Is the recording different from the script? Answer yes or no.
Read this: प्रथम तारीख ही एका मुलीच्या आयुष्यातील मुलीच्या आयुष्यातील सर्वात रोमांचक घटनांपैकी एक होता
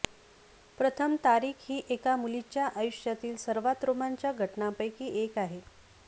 yes